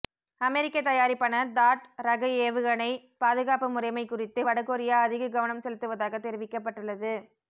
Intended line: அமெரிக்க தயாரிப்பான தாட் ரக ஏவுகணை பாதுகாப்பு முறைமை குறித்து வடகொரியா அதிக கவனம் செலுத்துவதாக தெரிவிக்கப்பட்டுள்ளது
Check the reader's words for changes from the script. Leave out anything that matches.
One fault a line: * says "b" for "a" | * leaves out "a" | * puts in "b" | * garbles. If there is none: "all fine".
all fine